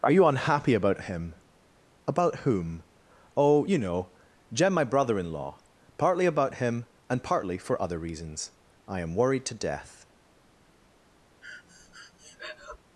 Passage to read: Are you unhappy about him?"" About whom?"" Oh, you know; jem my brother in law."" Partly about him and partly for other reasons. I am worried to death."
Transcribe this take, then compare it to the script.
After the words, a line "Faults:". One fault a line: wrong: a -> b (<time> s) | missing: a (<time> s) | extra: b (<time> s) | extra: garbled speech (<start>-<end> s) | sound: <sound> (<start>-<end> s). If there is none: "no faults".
Are you unhappy about him?"" About whom?"" Oh, you know; jem my brother in law."" Partly about him and partly for other reasons. I am worried to death."
Faults:
sound: breath (11.4-12.8 s)